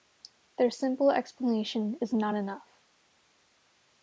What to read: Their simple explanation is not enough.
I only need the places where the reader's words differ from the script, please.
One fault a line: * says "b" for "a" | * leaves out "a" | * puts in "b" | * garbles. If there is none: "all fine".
all fine